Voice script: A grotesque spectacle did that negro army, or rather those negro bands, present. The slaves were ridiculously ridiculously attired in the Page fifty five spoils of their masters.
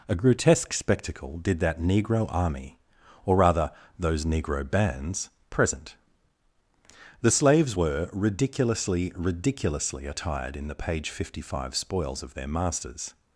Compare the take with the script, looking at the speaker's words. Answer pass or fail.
pass